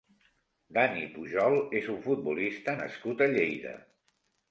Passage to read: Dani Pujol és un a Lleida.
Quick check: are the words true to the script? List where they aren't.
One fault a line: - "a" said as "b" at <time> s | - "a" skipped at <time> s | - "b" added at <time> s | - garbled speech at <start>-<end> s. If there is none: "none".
- "futbolista nascut" added at 2.0 s